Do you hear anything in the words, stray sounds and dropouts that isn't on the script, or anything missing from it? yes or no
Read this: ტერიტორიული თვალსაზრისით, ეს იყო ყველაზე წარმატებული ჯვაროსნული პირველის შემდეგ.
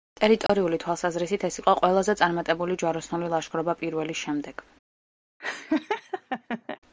yes